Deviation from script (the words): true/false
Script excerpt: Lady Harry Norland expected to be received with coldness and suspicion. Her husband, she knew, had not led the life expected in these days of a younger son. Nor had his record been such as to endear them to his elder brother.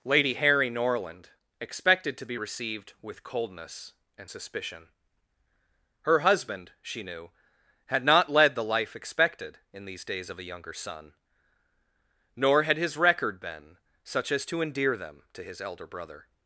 false